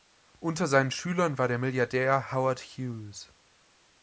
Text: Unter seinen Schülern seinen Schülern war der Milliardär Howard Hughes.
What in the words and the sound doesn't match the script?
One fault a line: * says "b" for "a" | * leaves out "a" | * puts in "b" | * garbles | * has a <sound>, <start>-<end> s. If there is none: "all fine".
* leaves out "seinen Schülern"